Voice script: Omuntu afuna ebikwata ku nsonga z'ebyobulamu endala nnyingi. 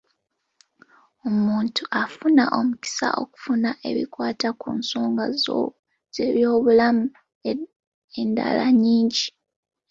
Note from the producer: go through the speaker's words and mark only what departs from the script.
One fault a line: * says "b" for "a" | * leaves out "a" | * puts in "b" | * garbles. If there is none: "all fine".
* puts in "omukisa okufuna"